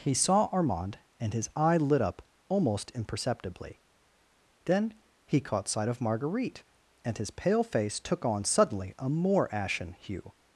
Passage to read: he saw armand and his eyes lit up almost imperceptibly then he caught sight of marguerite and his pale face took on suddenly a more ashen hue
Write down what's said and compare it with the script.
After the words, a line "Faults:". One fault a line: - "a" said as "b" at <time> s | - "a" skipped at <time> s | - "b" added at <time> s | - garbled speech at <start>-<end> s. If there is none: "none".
he saw armand and his eye lit up almost imperceptibly then he caught sight of marguerite and his pale face took on suddenly a more ashen hue
Faults:
- "eyes" said as "eye" at 1.6 s